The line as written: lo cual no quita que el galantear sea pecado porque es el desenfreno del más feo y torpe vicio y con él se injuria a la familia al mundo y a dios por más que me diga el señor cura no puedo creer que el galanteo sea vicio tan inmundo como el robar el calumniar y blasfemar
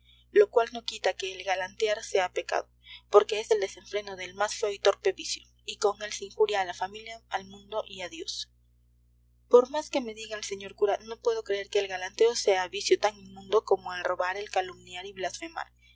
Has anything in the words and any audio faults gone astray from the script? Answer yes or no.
no